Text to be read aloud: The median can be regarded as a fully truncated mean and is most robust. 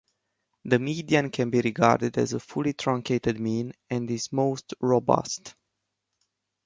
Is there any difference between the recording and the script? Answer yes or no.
no